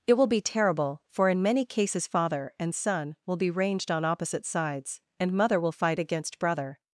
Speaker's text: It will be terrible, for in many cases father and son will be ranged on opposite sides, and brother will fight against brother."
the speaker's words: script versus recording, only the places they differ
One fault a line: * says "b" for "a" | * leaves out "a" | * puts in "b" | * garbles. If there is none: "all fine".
* says "mother" for "brother"